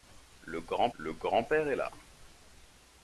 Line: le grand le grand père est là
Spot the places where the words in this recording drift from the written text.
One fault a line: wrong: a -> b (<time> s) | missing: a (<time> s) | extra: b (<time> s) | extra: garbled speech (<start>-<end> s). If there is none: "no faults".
no faults